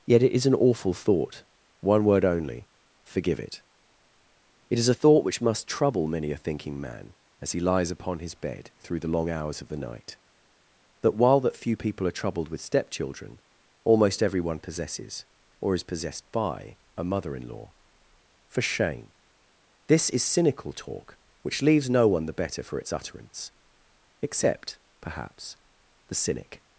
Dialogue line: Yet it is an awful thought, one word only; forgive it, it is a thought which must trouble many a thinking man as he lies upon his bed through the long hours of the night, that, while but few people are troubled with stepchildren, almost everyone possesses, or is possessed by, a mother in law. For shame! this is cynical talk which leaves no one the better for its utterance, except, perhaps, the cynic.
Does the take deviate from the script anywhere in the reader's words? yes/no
yes